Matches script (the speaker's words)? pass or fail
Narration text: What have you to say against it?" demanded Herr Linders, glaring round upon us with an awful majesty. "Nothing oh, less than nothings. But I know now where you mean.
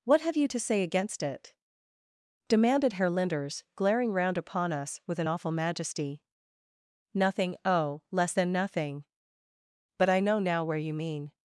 fail